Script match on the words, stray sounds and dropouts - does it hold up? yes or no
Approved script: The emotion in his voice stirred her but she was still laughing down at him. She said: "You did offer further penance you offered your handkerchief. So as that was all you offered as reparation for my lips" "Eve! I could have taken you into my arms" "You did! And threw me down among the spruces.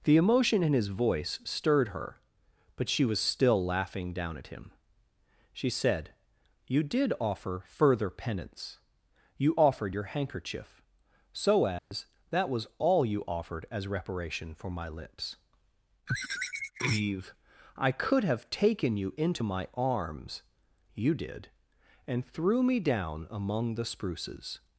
no